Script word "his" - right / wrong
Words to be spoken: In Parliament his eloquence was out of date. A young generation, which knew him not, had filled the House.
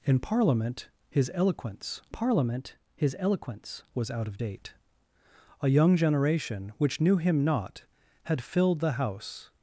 right